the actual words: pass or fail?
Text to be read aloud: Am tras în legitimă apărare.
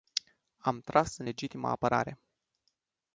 pass